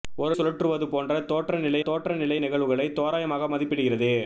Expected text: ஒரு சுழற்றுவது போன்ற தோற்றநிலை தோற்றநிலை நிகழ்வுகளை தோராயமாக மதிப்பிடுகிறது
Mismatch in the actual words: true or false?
false